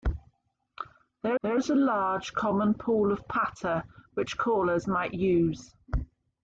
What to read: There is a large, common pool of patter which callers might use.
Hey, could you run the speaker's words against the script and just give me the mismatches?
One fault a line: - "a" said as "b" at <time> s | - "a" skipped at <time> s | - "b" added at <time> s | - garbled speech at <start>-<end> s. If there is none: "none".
- "there" added at 1.4 s